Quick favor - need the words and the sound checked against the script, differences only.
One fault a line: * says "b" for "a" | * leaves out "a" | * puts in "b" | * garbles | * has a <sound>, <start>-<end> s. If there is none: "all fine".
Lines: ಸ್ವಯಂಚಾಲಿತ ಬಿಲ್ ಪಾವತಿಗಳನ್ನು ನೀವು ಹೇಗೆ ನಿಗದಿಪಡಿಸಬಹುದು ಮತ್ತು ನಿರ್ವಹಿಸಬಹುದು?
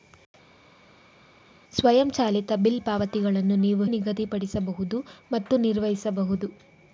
* leaves out "ಹೇಗೆ"